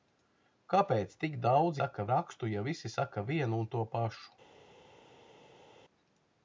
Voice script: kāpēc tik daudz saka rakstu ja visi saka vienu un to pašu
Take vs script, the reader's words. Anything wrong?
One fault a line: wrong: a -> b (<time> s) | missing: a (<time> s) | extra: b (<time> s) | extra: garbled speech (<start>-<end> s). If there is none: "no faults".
no faults